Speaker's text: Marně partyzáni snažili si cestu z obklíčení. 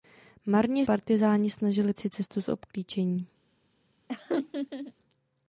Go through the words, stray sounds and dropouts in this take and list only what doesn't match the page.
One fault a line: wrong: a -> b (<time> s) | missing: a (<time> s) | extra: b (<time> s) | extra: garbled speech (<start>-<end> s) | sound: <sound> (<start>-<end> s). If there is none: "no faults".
sound: laugh (4.1-4.9 s)